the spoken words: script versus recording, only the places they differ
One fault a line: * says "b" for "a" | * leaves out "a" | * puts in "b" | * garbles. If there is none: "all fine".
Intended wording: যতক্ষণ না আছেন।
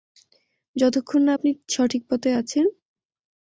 * puts in "আপনি সঠিক পথে"